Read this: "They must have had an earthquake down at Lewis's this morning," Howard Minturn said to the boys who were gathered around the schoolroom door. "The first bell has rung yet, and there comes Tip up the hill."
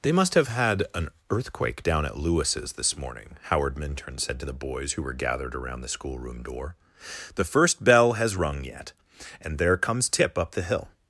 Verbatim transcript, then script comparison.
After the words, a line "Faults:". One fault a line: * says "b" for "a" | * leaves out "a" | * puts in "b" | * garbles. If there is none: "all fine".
"They must have had an earthquake down at Lewis's this morning," Howard Minturn said to the boys who were gathered around the schoolroom door. "The first bell has rung yet, and there comes Tip up the hill."
Faults:
all fine